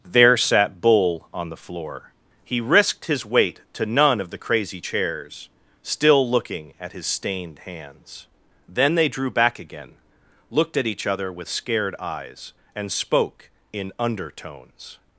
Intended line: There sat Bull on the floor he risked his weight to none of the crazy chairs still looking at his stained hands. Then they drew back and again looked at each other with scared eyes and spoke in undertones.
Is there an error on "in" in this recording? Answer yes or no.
no